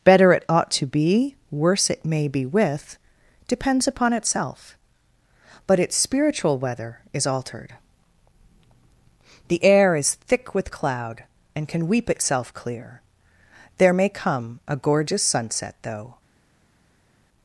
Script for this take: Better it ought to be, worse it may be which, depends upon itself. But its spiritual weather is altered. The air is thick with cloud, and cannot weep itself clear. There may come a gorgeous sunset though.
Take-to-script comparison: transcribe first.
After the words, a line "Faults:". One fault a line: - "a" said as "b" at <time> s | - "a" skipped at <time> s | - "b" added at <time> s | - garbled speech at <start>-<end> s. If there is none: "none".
Better it ought to be, worse it may be with, depends upon itself. But its spiritual weather is altered. The air is thick with cloud, and can weep itself clear. There may come a gorgeous sunset though.
Faults:
- "which" said as "with" at 2.4 s
- "cannot" said as "can" at 11.7 s